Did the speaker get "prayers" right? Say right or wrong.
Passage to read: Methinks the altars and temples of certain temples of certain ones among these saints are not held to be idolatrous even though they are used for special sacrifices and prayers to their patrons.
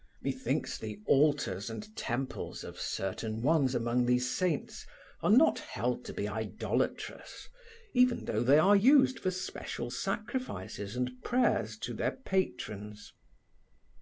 right